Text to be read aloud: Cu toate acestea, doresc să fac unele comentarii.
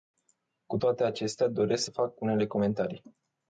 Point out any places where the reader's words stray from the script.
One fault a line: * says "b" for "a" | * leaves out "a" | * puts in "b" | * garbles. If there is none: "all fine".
all fine